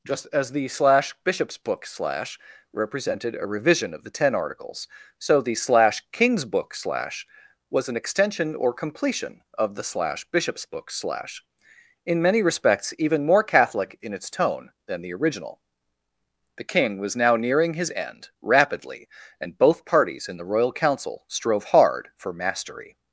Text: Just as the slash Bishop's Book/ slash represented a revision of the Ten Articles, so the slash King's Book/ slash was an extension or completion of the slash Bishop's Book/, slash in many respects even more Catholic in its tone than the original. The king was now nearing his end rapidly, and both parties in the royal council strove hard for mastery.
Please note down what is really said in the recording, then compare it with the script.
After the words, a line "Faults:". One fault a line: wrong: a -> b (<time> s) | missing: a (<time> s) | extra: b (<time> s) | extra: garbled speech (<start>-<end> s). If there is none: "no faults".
Just as the slash Bishop's Book/ slash represented a revision of the Ten Articles, so the slash King's Book/ slash was an extension or completion of the slash Bishop's Book/, slash in many respects even more Catholic in its tone than the original. The king was now nearing his end rapidly, and both parties in the royal council strove hard for mastery.
Faults:
no faults